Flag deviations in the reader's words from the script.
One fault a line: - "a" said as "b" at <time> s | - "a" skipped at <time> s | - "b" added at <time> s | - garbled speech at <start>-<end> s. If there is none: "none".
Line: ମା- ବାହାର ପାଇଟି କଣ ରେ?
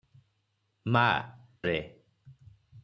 - "ବାହାର ପାଇଟି କଣ" skipped at 1.2 s